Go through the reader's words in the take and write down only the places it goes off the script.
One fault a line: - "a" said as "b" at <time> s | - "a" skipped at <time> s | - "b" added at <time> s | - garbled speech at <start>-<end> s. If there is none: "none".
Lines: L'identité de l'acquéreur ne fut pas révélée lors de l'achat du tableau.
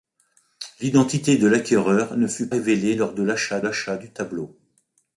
- "pas" skipped at 2.5 s
- "l'achat" added at 3.6 s